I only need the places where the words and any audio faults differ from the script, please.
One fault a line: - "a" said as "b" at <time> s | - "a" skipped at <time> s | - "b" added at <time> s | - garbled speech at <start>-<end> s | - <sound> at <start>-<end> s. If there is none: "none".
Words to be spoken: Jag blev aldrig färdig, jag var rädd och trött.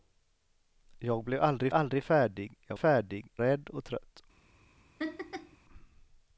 - "aldrig" added at 1.7 s
- "var" said as "färdig" at 2.8 s
- laugh at 5.0-5.6 s